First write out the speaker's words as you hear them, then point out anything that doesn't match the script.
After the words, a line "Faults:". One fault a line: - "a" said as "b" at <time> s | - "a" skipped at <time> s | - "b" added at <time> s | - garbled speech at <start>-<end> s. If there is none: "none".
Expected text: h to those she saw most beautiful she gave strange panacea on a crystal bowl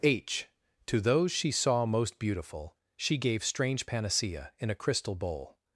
h to those she saw most beautiful she gave strange panacea in a crystal bowl
Faults:
- "on" said as "in" at 4.6 s